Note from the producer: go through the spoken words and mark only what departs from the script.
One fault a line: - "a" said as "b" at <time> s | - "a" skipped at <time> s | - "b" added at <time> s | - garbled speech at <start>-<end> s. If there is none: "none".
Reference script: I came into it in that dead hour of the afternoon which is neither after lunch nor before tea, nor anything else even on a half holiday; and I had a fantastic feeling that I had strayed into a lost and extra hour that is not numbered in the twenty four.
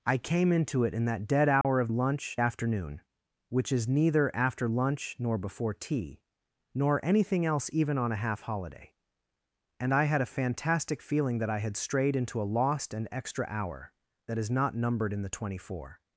- "the" said as "lunch" at 1.9 s